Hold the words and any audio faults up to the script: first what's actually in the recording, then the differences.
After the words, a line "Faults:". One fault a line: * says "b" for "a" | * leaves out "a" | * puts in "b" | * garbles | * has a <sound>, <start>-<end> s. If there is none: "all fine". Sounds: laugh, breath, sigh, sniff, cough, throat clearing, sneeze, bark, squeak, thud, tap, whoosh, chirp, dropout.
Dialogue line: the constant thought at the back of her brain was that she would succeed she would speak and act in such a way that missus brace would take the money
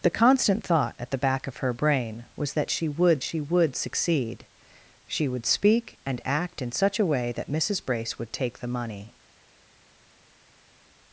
the constant thought at the back of her brain was that she would she would succeed she would speak and act in such a way that missus brace would take the money
Faults:
* puts in "she would"